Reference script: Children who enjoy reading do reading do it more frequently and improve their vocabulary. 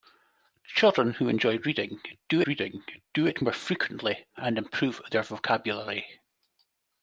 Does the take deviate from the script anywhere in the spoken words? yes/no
no